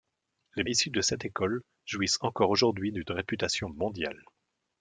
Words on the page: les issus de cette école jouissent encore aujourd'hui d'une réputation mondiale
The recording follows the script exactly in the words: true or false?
true